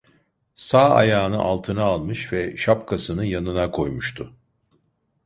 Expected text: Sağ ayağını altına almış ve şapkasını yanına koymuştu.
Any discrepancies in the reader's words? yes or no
no